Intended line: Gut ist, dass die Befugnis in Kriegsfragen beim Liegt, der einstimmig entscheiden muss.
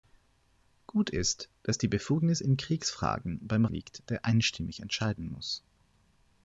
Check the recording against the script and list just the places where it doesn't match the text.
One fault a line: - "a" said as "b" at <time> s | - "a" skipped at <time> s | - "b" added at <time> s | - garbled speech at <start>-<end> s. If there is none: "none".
none